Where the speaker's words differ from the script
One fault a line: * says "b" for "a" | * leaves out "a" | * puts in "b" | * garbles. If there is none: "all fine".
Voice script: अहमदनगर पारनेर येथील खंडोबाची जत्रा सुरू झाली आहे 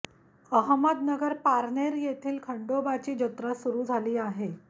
all fine